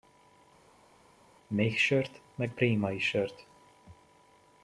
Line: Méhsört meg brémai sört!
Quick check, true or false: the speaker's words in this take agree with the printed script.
true